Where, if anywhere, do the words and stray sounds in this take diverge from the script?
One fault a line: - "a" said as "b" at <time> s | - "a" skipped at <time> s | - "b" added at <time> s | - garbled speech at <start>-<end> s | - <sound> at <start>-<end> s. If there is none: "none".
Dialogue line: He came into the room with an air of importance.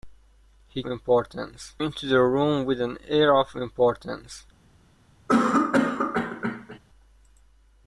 - "came" said as "importance" at 0.8 s
- cough at 5.3-6.8 s